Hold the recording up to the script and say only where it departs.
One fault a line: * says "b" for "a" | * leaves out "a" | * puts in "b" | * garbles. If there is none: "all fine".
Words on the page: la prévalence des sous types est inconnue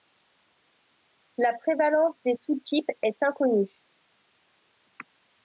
all fine